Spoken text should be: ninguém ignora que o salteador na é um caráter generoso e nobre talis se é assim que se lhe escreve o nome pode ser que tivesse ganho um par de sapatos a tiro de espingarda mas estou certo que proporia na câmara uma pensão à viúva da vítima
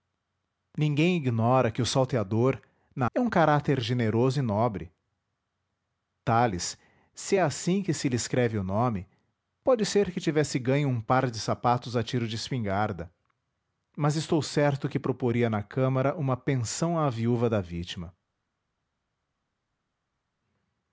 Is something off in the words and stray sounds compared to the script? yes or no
no